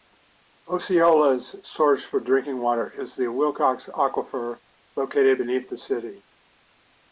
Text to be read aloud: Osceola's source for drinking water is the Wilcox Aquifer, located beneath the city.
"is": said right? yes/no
yes